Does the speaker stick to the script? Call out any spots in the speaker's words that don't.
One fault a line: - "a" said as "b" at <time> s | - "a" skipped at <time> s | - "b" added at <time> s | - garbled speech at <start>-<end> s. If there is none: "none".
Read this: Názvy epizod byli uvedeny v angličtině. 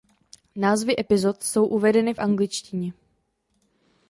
- "byli" said as "jsou" at 1.4 s